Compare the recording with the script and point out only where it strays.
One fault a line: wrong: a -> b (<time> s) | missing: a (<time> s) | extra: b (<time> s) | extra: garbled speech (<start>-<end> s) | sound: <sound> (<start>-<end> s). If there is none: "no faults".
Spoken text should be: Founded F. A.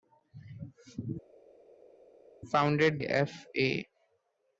no faults